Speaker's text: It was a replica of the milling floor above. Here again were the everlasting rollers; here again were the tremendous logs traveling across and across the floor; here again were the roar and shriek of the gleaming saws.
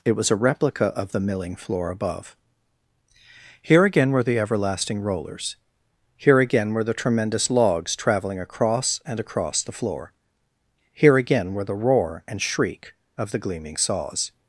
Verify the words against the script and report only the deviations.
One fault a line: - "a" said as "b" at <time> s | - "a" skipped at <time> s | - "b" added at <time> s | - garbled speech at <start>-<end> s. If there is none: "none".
none